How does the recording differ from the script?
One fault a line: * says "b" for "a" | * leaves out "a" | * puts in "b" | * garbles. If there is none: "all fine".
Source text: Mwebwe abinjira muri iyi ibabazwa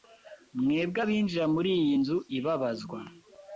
* puts in "nzu"